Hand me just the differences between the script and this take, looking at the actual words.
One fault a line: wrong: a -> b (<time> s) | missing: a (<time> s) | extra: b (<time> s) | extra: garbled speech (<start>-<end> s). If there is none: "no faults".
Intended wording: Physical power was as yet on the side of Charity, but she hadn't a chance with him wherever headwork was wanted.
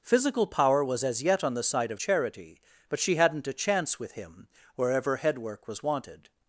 no faults